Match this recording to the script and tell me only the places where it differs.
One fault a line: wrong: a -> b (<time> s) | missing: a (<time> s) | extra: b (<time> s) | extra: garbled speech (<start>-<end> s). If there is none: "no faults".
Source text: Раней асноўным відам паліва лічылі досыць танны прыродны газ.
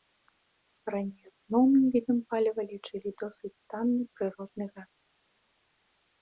no faults